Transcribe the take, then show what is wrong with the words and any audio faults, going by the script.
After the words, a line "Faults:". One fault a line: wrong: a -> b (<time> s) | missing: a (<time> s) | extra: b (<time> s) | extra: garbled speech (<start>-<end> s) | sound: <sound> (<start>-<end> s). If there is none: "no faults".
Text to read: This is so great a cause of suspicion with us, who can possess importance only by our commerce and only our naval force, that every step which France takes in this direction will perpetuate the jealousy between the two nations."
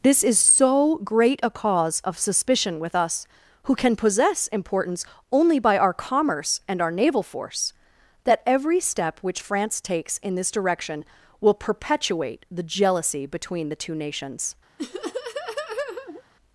This is so great a cause of suspicion with us, who can possess importance only by our commerce and our naval force, that every step which France takes in this direction will perpetuate the jealousy between the two nations."
Faults:
missing: only (6.8 s)
sound: laugh (14.8-16.2 s)